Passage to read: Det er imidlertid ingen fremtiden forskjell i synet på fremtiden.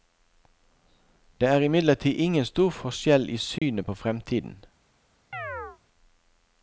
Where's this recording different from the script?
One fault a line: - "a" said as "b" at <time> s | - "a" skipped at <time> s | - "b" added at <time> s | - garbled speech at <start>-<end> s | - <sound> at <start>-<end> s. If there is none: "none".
- "fremtiden" said as "stor" at 2.5 s
- dropout at 3.6-3.6 s
- chirp at 5.3-5.8 s